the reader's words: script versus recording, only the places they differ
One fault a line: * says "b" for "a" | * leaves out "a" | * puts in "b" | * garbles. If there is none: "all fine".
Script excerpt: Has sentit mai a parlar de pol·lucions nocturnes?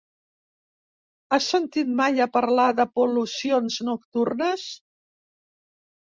all fine